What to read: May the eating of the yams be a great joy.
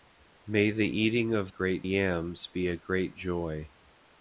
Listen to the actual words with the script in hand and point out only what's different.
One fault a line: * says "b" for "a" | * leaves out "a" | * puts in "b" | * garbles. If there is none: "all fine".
* says "great" for "the"